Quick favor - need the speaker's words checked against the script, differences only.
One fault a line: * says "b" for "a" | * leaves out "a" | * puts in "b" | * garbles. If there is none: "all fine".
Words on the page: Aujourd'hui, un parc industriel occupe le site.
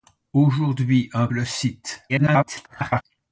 * leaves out "parc industriel occupe"
* garbles